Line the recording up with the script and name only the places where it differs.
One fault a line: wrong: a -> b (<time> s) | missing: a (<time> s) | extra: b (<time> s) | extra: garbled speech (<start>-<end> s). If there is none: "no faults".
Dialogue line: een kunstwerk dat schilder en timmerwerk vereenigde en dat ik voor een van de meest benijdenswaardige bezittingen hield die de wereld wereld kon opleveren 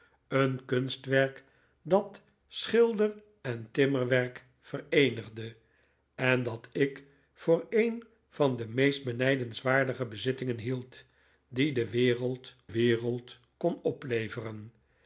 no faults